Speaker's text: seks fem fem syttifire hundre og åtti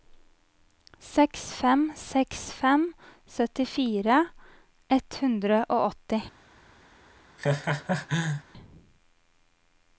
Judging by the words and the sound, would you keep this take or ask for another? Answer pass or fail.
fail